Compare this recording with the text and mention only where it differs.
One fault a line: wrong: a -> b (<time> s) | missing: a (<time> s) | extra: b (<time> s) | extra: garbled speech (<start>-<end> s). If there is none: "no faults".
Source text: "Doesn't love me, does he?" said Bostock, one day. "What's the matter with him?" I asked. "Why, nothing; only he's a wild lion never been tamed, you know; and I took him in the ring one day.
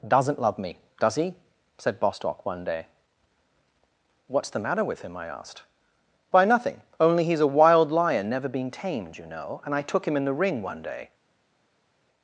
no faults